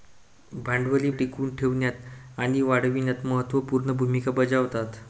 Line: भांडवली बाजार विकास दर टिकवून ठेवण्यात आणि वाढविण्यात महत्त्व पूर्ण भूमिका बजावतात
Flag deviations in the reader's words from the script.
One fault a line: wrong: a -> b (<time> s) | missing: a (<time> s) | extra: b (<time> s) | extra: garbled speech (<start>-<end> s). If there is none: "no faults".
missing: बाजार विकास दर (1.1 s)